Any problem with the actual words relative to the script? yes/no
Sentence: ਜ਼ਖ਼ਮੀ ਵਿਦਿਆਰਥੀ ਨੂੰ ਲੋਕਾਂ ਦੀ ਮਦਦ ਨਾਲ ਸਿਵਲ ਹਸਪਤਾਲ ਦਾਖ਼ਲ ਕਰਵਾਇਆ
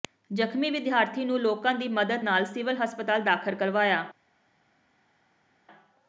no